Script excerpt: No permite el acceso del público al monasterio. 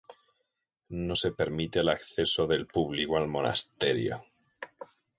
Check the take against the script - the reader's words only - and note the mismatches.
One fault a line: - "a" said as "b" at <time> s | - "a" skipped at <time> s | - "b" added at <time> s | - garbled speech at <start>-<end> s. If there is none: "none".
- "se" added at 1.2 s